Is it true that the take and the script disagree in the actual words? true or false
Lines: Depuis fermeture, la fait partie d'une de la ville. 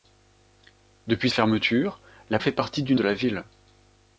false